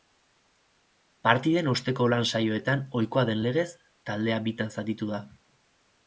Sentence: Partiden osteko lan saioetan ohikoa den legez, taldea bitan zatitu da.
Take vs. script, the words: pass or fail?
pass